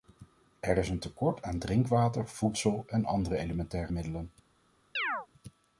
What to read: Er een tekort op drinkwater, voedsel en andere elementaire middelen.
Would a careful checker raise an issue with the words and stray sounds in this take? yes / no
yes